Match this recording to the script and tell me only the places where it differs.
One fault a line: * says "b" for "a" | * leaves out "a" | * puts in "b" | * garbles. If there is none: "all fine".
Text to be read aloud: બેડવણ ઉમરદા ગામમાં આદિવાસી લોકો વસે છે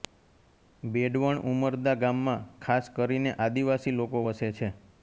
* puts in "ખાસ કરીને"